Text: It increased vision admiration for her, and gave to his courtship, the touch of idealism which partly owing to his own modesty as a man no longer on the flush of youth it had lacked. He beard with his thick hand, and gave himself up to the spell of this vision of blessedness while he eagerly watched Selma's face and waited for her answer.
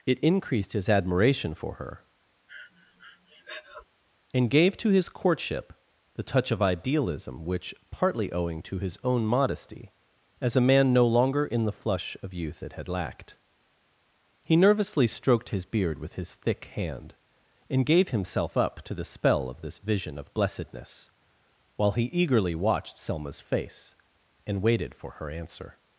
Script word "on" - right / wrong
wrong